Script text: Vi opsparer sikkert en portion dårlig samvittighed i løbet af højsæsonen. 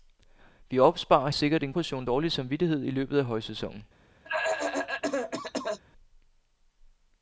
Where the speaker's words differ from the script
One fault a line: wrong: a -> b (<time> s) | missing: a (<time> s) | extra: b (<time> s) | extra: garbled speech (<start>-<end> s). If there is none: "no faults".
no faults